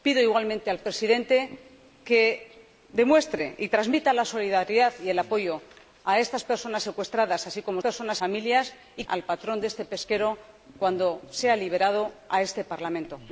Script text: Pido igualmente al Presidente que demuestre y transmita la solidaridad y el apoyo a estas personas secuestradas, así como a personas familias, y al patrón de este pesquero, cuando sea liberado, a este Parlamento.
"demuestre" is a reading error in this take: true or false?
false